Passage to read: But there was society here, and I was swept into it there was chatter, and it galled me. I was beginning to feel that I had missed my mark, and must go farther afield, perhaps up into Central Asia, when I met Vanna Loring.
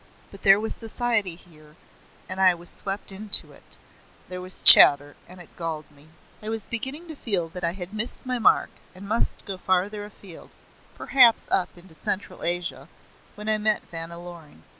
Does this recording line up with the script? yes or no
yes